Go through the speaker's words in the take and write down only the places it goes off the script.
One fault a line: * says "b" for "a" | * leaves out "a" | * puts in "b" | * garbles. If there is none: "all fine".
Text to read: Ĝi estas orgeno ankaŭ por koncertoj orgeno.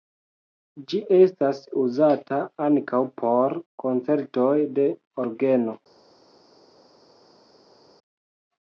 * says "uzata" for "orgeno"
* puts in "de"